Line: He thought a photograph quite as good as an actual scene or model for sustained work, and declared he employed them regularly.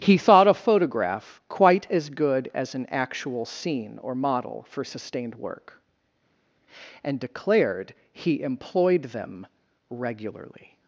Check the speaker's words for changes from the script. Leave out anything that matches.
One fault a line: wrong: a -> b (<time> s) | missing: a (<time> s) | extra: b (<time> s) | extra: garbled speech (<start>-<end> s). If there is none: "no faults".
no faults